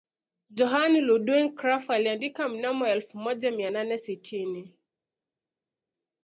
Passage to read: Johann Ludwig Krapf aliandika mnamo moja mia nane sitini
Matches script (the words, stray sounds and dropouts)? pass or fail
fail